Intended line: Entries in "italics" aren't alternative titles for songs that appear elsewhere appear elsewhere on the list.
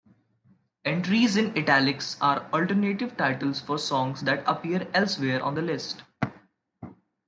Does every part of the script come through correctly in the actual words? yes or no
no